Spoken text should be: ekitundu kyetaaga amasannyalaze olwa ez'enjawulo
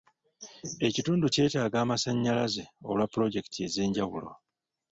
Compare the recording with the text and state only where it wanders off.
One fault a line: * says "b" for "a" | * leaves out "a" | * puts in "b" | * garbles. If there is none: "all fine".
* puts in "pulojekiti"